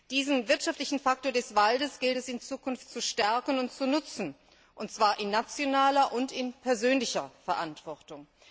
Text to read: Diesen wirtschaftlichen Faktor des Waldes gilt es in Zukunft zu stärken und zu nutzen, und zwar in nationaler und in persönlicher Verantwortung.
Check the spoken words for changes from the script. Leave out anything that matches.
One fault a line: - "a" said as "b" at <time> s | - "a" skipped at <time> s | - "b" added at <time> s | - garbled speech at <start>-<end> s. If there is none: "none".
none